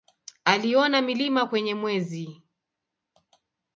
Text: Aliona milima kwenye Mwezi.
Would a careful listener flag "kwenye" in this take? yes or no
no